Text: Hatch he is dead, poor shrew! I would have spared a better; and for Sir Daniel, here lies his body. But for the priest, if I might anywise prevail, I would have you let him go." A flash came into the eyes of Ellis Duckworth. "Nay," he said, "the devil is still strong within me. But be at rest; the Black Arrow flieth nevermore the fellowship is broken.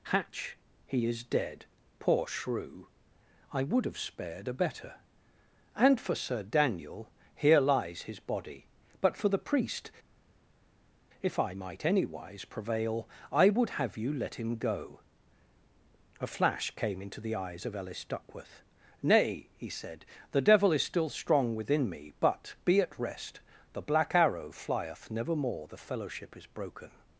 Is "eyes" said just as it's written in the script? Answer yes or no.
yes